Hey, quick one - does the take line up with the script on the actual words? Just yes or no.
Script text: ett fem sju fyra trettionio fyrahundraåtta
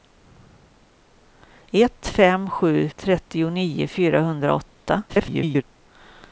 no